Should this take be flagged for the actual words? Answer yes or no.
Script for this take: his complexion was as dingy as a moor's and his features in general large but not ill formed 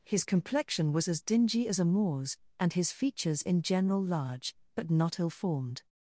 no